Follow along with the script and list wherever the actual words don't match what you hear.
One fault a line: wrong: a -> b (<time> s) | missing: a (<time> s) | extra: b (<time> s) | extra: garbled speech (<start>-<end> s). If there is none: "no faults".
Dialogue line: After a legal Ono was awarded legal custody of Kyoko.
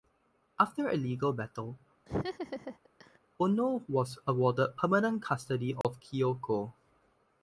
extra: battle (1.3 s)
wrong: legal -> permanent (4.7 s)